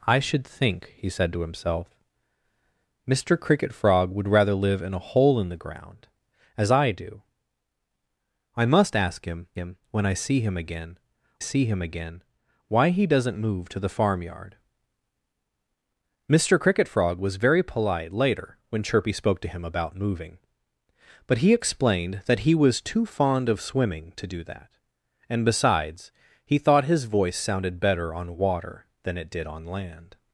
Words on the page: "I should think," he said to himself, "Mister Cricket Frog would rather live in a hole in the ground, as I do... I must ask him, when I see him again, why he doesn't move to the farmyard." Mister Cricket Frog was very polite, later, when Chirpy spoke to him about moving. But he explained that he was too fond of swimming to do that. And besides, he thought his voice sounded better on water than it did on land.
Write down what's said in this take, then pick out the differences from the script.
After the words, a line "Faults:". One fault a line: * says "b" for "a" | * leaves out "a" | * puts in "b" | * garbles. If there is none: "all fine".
"I should think," he said to himself, "Mister Cricket Frog would rather live in a hole in the ground, as I do... I must ask him him, when I see him again see him again, why he doesn't move to the farmyard." Mister Cricket Frog was very polite, later, when Chirpy spoke to him about moving. But he explained that he was too fond of swimming to do that. And besides, he thought his voice sounded better on water than it did on land.
Faults:
* puts in "him"
* puts in "see him again"